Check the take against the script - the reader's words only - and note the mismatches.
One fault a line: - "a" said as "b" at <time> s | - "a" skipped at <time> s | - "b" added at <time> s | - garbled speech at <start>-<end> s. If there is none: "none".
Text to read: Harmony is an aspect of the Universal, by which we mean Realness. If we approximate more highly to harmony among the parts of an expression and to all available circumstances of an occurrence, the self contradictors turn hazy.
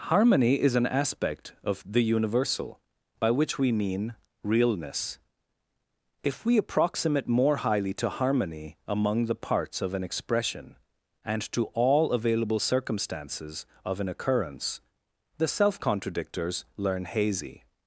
- "turn" said as "learn" at 16.8 s